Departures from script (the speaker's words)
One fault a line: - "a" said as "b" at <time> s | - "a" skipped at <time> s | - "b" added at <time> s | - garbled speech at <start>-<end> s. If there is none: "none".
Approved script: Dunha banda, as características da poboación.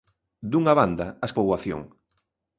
- "características da" skipped at 1.3 s